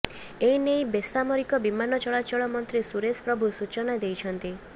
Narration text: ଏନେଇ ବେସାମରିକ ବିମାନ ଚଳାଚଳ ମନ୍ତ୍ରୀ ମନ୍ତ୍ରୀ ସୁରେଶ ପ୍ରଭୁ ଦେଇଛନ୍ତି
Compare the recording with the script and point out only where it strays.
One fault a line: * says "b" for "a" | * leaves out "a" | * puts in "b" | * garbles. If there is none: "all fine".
* leaves out "ମନ୍ତ୍ରୀ"
* puts in "ସୂଚନା"